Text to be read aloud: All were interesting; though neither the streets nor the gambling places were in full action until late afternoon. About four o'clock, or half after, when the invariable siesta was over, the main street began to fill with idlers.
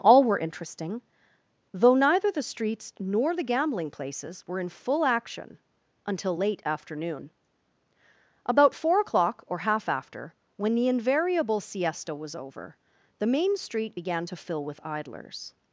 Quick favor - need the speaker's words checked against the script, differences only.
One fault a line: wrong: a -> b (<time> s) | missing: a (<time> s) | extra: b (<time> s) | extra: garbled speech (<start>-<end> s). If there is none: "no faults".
no faults